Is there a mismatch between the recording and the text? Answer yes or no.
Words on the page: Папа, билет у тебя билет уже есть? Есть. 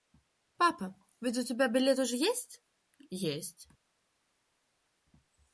yes